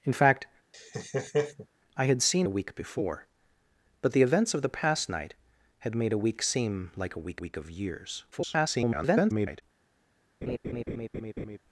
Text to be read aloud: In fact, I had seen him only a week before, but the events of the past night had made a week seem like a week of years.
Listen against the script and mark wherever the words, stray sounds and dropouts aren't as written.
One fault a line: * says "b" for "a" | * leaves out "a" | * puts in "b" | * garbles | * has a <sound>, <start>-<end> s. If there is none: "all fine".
* has a laugh, 0.7-1.7 s
* leaves out "him only"
* puts in "week"
* garbles
* has a laugh, 10.4-11.6 s